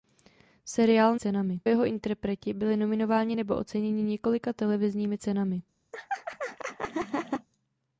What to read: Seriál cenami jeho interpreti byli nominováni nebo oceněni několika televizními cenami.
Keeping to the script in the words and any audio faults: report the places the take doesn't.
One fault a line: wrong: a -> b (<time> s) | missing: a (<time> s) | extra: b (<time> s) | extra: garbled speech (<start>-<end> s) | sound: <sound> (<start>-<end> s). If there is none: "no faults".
sound: laugh (5.9-7.5 s)